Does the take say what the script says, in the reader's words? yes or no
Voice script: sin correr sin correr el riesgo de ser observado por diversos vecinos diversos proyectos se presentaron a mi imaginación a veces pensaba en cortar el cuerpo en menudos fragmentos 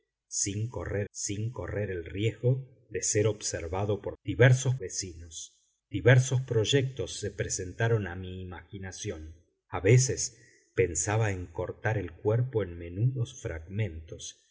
yes